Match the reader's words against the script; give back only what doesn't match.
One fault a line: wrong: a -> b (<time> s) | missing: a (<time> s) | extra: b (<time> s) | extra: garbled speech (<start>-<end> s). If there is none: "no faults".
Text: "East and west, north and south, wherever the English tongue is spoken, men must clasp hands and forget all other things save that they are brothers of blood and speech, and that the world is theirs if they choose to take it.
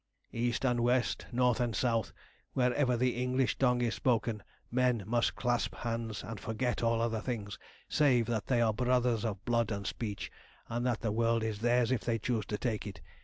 no faults